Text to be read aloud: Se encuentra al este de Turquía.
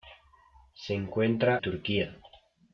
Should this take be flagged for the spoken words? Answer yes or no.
yes